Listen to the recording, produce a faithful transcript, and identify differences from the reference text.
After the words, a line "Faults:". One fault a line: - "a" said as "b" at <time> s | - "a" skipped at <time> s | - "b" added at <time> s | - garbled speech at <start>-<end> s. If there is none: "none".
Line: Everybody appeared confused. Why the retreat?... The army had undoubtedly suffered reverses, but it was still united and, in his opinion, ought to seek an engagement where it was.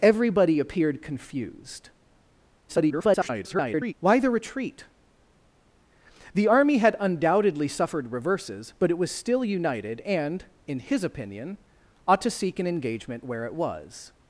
Everybody appeared confused. [garbled] Why the retreat?... The army had undoubtedly suffered reverses, but it was still united and, in his opinion, ought to seek an engagement where it was.
Faults:
- garbled speech at 2.7-3.9 s